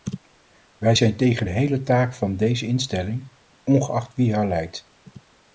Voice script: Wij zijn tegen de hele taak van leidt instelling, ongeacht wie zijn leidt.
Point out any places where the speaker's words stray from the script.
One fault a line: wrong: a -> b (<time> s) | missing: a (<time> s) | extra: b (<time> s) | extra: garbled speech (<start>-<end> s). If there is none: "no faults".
wrong: leidt -> deze (2.4 s)
wrong: zijn -> haar (4.3 s)